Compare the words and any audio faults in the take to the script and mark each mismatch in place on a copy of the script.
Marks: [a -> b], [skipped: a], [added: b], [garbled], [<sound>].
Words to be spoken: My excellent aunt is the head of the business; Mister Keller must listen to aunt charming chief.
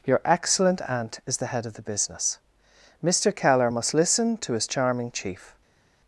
[My -> Your] excellent aunt is the head of the business; Mister Keller must listen to [aunt -> his] charming chief.